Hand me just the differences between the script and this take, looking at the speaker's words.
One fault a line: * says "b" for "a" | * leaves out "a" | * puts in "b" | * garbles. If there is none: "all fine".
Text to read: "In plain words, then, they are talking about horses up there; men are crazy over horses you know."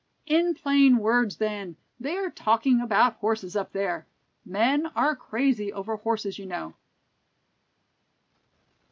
all fine